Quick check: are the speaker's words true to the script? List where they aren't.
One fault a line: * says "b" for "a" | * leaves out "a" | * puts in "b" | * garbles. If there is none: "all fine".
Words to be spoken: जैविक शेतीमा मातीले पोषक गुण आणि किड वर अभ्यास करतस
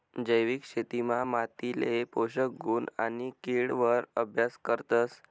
all fine